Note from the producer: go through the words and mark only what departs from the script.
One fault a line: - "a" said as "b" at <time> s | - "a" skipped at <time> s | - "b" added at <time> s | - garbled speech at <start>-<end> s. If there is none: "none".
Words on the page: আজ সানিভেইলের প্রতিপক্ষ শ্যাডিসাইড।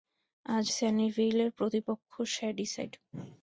none